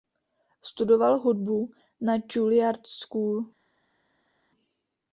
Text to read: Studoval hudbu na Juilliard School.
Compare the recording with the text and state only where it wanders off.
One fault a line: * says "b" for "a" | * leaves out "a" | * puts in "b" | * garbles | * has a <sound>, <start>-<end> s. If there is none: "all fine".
all fine